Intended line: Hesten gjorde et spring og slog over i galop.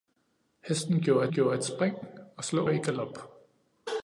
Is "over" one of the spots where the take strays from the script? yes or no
yes